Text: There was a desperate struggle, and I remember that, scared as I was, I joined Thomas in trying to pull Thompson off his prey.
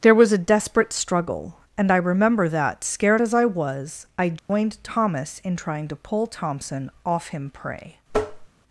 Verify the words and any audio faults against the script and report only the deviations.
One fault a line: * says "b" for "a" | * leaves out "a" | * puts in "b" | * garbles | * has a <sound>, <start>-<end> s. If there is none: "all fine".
* has a dropout, 4.4-4.5 s
* says "him" for "his"
* has a tap, 8.1-8.5 s